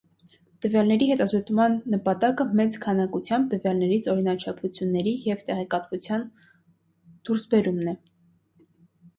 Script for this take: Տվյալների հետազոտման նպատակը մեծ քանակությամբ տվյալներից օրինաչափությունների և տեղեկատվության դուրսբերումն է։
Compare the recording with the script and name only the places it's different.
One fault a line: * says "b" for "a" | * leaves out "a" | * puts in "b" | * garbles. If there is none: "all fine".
all fine